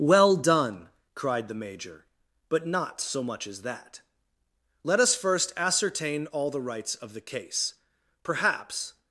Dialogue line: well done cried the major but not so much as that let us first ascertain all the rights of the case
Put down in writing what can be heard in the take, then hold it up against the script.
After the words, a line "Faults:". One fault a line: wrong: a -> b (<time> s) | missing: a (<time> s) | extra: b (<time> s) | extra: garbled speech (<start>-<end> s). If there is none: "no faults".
well done cried the major but not so much as that let us first ascertain all the rights of the case perhaps
Faults:
extra: perhaps (8.2 s)